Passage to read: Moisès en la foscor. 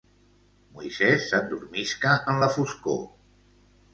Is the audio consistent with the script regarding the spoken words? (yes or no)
no